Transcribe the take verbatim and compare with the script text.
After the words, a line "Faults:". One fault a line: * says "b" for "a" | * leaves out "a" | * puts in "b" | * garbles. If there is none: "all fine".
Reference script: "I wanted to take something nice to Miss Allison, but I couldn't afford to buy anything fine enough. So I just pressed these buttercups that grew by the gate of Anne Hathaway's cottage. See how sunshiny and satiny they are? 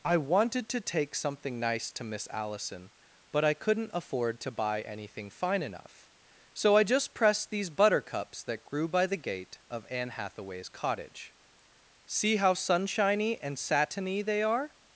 "I wanted to take something nice to Miss Allison, but I couldn't afford to buy anything fine enough. So I just pressed these buttercups that grew by the gate of Anne Hathaway's cottage. See how sunshiny and satiny they are?
Faults:
all fine